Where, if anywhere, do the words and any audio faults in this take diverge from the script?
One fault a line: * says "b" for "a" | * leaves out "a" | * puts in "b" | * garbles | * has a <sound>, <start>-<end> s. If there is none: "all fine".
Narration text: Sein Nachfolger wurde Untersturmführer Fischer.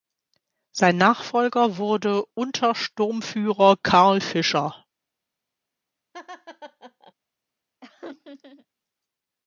* puts in "Karl"
* has a laugh, 6.1-7.1 s
* has a laugh, 7.8-8.7 s